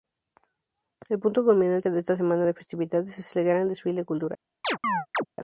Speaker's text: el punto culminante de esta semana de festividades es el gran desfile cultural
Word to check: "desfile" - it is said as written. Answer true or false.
true